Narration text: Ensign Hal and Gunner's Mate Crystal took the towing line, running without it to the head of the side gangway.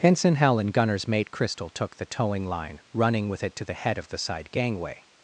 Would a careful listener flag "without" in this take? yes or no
yes